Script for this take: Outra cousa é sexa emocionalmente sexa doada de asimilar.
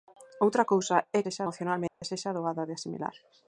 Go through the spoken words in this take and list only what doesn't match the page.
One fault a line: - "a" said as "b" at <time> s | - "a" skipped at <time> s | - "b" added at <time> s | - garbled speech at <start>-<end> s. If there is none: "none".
none